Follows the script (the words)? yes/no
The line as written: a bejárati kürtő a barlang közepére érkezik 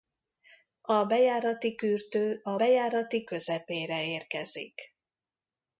no